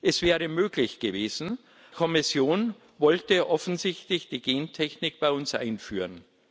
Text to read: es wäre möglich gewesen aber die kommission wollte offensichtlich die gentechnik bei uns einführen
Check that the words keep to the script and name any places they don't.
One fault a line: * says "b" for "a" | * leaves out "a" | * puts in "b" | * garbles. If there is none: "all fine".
* leaves out "aber die"